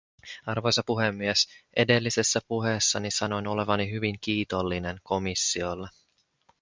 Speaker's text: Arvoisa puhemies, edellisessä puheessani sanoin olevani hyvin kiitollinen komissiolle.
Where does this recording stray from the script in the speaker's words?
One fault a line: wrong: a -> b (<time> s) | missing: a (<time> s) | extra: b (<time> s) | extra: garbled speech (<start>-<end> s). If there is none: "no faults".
no faults